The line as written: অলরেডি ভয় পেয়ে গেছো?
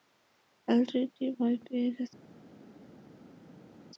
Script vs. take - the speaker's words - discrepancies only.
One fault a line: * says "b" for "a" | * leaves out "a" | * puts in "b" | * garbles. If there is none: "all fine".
all fine